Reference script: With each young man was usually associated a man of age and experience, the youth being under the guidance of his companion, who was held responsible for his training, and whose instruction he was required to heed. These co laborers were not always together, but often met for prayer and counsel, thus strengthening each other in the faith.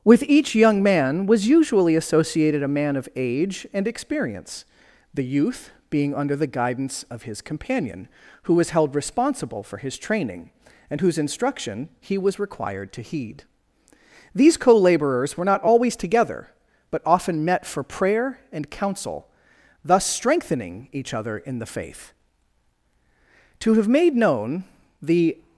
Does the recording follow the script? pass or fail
fail